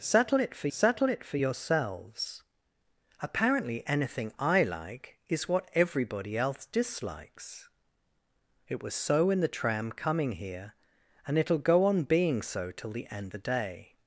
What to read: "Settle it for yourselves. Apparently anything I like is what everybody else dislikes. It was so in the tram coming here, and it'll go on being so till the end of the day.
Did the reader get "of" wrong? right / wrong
wrong